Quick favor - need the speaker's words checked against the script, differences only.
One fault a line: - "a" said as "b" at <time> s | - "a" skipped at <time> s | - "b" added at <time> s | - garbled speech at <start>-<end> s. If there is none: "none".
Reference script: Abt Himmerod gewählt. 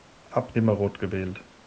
none